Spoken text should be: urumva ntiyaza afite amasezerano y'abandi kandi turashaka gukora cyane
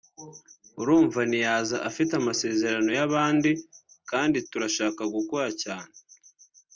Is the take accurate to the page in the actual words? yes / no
yes